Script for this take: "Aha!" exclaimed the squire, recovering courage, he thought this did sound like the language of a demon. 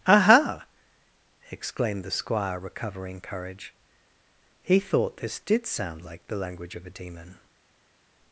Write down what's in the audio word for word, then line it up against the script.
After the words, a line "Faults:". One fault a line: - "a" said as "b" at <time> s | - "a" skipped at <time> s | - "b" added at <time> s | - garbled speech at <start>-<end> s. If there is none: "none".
"Aha!" exclaimed the squire, recovering courage, he thought this did sound like the language of a demon.
Faults:
none